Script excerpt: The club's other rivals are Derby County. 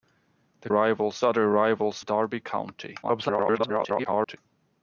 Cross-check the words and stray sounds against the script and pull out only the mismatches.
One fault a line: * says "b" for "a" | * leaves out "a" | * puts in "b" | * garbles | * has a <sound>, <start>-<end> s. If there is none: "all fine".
* says "rivals" for "club's"
* leaves out "are"
* garbles